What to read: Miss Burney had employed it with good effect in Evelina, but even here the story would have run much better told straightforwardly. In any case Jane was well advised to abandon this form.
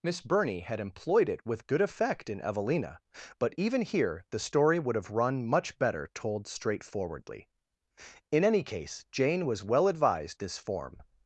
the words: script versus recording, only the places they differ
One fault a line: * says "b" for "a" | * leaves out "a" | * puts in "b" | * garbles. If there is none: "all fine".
* leaves out "to abandon"